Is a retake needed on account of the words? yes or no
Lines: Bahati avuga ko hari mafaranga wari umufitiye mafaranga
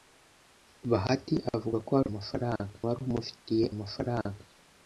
no